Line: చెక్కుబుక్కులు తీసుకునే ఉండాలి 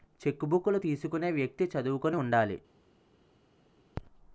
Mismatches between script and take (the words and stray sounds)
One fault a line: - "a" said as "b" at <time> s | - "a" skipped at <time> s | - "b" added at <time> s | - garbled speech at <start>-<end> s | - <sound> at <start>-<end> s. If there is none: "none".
- "వ్యక్తి చదువుకుని" added at 1.3 s